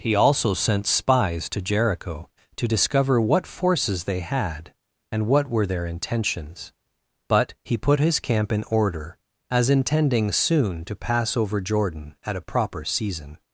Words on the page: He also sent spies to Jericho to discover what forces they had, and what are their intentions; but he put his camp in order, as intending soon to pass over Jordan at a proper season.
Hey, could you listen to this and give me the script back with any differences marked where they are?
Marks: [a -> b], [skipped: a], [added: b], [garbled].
He also sent spies to Jericho to discover what forces they had, and what [are -> were] their intentions; but he put his camp in order, as intending soon to pass over Jordan at a proper season.